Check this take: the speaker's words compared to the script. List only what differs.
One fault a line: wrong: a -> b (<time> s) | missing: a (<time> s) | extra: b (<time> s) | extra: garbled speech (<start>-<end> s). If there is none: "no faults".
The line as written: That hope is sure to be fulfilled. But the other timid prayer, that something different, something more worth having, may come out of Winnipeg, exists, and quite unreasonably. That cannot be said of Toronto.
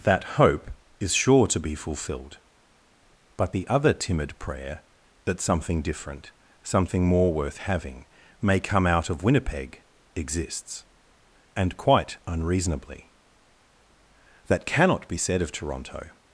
no faults